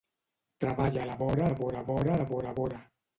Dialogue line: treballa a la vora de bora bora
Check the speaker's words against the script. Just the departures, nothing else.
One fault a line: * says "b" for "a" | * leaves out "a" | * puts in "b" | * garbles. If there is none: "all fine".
* puts in "vora de bora"